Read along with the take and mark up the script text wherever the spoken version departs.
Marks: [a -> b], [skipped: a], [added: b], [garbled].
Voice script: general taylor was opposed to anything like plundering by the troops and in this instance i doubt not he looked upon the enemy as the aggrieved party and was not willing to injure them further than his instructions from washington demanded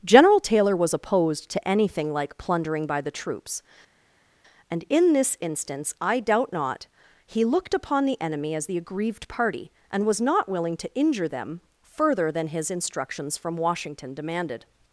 general taylor was opposed to anything like plundering by the troops and in this instance i doubt not he looked upon the enemy as the aggrieved party and was not willing to injure them further than his instructions from washington demanded